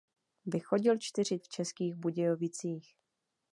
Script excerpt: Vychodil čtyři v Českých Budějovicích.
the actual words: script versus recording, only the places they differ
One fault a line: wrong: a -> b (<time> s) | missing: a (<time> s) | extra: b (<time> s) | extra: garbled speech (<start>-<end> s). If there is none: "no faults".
no faults